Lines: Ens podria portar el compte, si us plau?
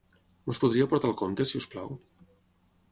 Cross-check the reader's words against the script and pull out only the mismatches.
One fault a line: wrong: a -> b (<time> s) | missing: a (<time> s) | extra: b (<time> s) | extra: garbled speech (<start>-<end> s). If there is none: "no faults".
no faults